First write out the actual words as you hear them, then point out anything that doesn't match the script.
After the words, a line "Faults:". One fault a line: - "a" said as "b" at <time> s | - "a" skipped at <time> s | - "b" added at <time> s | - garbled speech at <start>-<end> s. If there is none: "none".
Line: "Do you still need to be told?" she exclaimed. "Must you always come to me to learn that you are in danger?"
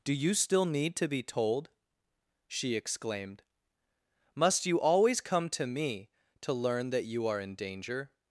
"Do you still need to be told?" she exclaimed. "Must you always come to me to learn that you are in danger?"
Faults:
none